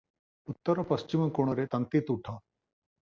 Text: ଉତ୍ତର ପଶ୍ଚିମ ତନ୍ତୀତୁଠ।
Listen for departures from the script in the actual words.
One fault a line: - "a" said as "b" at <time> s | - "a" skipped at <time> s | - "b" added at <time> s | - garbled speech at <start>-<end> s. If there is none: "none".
- "କୋଣରେ" added at 1.3 s